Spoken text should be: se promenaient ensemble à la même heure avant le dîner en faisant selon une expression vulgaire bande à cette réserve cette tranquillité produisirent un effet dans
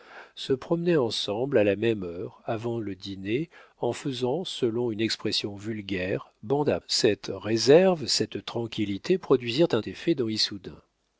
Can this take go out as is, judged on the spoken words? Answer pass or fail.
pass